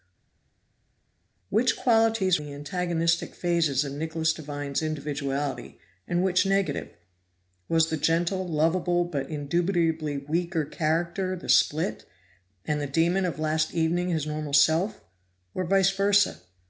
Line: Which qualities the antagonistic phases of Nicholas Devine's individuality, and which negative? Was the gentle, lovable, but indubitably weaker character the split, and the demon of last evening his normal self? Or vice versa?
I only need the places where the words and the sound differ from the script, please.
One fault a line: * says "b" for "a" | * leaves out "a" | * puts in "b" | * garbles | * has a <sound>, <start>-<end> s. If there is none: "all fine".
all fine